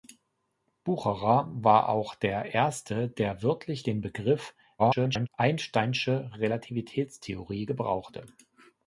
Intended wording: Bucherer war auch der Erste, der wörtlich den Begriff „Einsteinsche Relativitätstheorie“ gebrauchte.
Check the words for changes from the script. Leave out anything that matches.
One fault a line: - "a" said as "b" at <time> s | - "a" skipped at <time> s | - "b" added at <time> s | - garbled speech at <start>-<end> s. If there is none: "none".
- garbled speech at 4.8-5.3 s